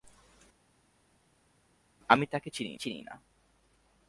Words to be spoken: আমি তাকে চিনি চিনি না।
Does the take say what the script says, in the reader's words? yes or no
yes